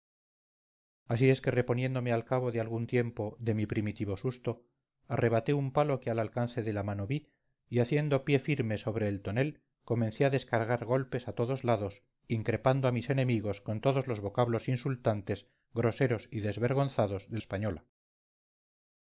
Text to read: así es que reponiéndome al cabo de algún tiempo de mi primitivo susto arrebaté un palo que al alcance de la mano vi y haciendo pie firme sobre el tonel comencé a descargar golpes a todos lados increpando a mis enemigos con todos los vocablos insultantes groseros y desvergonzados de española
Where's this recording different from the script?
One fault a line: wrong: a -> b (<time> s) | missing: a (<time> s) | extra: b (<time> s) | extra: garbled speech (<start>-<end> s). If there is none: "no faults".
no faults